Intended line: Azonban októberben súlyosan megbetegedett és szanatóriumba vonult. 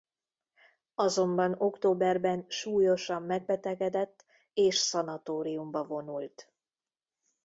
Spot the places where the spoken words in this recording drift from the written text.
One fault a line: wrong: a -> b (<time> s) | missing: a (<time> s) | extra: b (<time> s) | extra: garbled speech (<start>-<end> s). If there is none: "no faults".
no faults